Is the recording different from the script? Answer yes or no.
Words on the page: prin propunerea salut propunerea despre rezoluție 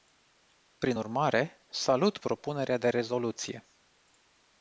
yes